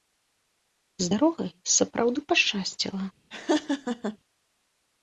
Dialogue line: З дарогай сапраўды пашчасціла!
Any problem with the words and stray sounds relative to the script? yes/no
yes